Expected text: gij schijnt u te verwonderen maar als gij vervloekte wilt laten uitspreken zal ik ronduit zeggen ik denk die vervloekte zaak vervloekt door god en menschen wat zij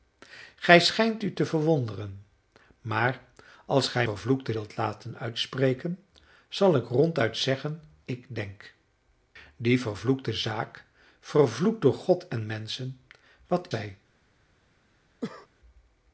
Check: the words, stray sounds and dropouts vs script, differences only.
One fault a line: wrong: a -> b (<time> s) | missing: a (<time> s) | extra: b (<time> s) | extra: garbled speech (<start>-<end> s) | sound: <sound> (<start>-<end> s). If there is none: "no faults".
sound: cough (15.2-15.5 s)